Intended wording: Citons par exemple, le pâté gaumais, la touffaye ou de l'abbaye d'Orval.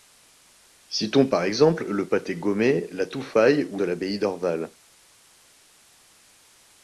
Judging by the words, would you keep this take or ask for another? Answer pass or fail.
pass